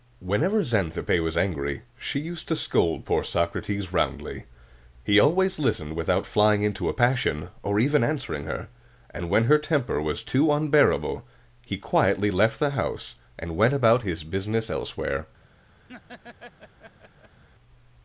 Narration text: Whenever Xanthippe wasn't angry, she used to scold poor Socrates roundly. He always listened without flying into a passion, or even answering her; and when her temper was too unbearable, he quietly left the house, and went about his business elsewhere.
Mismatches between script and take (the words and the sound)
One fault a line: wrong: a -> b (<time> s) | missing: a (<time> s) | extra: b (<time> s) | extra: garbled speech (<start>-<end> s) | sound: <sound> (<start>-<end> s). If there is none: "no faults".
wrong: wasn't -> was (1.2 s)
sound: laugh (15.9-17.4 s)